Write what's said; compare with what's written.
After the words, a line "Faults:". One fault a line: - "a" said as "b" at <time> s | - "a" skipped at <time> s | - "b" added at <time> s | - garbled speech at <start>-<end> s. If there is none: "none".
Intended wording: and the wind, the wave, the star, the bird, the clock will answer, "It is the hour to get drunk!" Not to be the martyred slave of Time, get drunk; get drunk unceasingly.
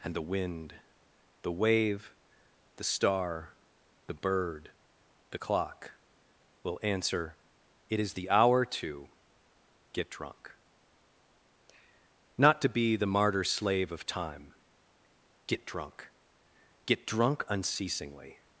and the wind, the wave, the star, the bird, the clock will answer, "It is the hour to get drunk!" Not to be the martyr slave of Time, get drunk; get drunk unceasingly.
Faults:
- "martyred" said as "martyr" at 13.1 s